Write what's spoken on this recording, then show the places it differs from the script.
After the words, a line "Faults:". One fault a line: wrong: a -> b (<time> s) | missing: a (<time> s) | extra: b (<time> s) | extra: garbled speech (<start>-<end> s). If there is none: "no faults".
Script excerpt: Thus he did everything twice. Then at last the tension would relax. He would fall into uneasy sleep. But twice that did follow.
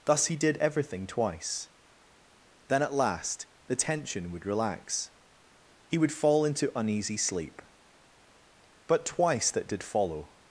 Thus he did everything twice. Then at last the tension would relax. He would fall into uneasy sleep. But twice that did follow.
Faults:
no faults